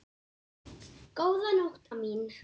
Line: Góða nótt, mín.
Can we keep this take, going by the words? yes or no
yes